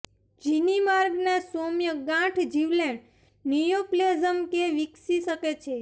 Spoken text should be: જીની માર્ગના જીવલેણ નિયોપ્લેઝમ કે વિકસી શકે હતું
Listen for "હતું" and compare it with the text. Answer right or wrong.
wrong